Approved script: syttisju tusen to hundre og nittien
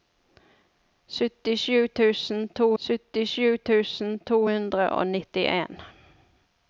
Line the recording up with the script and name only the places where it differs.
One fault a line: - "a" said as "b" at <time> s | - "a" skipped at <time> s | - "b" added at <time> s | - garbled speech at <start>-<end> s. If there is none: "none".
- "syttisju tusen to" added at 2.8 s